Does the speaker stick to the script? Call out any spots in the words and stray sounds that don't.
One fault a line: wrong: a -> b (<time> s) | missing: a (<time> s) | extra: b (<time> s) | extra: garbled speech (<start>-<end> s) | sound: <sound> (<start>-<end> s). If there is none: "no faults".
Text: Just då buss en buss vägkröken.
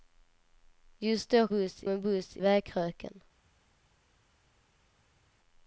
no faults